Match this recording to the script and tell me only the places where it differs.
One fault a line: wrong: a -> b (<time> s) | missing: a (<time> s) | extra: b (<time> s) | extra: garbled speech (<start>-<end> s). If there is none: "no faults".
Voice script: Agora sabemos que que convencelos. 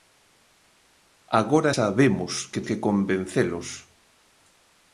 no faults